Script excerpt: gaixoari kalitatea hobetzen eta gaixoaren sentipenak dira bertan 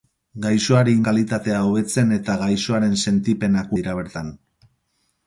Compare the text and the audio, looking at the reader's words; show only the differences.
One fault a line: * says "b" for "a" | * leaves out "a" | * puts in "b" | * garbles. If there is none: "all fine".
all fine